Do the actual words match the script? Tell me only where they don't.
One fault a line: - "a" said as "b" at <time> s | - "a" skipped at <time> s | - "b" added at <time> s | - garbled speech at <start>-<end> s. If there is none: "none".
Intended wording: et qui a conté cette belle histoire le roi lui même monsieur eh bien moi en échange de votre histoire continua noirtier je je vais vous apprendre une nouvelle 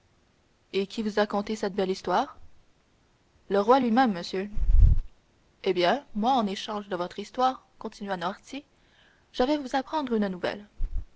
- "vous" added at 1.0 s
- "je" skipped at 9.4 s